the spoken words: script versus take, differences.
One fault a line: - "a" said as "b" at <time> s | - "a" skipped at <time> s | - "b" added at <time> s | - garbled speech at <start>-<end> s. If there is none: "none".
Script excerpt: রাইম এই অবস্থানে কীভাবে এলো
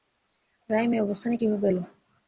none